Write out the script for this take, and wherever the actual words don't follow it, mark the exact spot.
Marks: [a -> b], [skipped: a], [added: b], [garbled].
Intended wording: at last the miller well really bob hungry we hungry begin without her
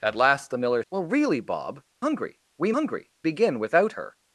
at last the miller well really bob hungry we hungry begin without her